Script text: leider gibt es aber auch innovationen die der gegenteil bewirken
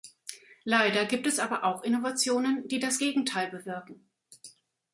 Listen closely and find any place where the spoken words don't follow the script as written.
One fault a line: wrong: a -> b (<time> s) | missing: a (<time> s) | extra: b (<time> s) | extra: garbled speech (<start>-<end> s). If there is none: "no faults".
wrong: der -> das (2.8 s)